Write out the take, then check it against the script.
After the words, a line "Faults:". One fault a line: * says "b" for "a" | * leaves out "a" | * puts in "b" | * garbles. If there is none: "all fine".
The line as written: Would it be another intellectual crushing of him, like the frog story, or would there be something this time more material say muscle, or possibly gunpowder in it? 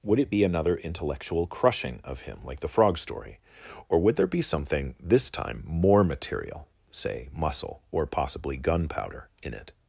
Would it be another intellectual crushing of him, like the frog story, or would there be something this time more material say muscle, or possibly gunpowder in it?
Faults:
all fine